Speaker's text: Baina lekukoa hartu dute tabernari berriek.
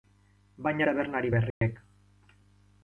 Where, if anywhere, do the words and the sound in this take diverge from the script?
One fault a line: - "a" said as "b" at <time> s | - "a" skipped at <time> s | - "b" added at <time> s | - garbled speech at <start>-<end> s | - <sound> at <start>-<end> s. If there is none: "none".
- "lekukoa hartu dute" skipped at 0.9 s
- dropout at 1.5-1.6 s